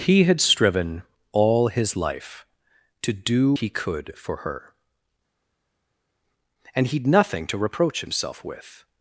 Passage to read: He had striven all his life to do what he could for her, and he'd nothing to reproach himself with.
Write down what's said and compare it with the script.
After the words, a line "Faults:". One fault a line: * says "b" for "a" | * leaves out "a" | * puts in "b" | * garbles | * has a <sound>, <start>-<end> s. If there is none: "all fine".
He had striven all his life to do he could for her, and he'd nothing to reproach himself with.
Faults:
* leaves out "what"